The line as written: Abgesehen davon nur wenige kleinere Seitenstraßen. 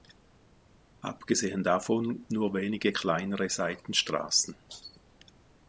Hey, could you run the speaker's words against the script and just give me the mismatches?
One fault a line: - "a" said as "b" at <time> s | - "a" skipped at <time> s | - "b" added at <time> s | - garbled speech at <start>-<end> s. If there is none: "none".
none